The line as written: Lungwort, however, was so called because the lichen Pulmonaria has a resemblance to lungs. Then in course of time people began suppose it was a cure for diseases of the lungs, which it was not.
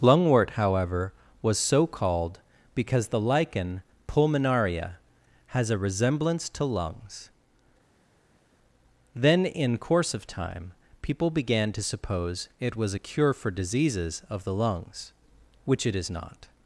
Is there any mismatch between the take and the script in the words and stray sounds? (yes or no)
yes